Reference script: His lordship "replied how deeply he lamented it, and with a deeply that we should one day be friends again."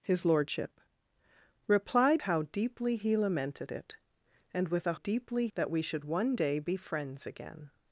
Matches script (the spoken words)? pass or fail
pass